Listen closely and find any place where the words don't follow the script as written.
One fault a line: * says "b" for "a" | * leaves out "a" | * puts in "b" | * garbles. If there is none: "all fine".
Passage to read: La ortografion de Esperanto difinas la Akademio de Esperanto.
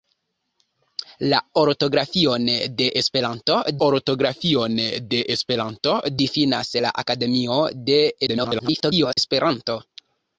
* puts in "ortografion de Esperanto"
* garbles